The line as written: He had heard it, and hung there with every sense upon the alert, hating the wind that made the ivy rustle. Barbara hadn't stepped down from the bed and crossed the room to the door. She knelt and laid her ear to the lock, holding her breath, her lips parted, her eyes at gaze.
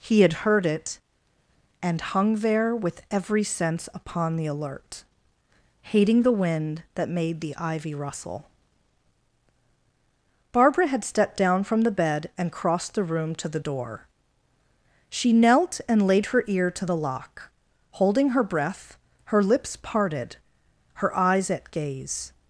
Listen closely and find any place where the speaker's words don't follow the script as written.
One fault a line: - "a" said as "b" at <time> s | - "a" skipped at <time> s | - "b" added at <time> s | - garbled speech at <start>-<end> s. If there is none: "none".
- "hadn't" said as "had" at 10.9 s